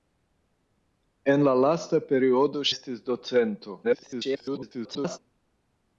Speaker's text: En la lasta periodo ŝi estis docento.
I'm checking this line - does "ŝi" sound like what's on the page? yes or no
no